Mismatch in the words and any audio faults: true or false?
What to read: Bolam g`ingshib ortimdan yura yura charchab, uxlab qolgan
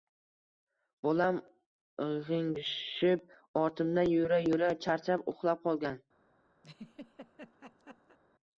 true